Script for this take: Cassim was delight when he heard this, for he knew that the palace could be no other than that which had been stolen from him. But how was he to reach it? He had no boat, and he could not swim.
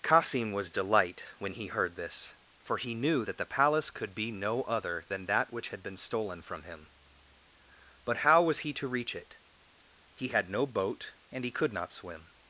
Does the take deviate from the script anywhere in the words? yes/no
no